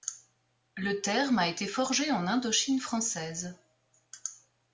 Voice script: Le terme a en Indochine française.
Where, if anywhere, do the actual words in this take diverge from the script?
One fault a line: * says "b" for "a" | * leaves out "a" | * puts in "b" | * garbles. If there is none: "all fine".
* puts in "été forgé"